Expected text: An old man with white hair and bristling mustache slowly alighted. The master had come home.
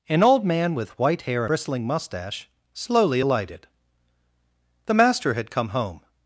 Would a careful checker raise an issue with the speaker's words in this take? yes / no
yes